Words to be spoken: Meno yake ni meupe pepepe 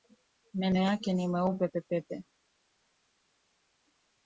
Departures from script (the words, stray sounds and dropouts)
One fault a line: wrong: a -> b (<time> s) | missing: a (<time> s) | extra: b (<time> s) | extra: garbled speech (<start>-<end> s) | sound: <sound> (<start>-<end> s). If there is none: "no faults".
no faults